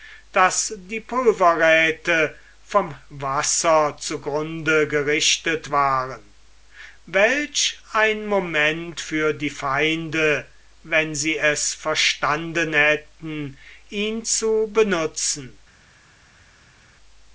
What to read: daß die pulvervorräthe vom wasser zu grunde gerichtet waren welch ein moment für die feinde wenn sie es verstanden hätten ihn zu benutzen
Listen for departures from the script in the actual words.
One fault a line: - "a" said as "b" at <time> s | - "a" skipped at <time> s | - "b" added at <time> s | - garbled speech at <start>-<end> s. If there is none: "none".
none